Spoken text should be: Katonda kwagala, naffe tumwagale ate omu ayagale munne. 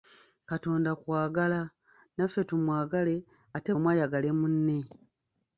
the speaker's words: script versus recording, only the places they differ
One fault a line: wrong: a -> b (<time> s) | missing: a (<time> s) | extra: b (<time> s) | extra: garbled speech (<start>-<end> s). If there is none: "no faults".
no faults